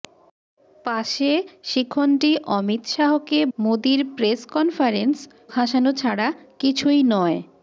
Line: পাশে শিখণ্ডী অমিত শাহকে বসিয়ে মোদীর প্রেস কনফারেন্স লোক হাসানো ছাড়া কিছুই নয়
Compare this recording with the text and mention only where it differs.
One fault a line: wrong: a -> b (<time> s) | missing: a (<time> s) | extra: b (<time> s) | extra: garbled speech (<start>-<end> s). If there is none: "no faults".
missing: বসিয়ে (3.4 s)
missing: লোক (5.2 s)